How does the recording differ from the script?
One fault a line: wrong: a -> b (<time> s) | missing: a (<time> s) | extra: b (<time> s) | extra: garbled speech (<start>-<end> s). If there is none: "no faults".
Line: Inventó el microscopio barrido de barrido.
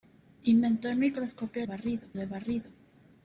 no faults